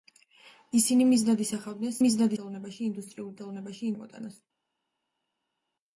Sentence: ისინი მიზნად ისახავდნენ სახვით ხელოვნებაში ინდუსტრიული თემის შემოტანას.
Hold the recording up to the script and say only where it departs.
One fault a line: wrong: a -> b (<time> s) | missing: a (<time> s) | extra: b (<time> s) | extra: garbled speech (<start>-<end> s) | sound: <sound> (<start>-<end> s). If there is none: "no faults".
wrong: სახვით -> მიზნად (2.0 s)
wrong: თემის -> ხელოვნებაში (3.4 s)